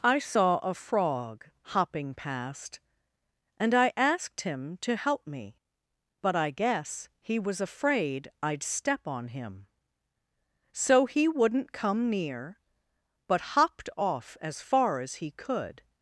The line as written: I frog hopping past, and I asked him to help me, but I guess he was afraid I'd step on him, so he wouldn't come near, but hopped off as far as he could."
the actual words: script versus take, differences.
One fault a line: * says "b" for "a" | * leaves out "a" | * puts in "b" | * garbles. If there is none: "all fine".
* puts in "saw a"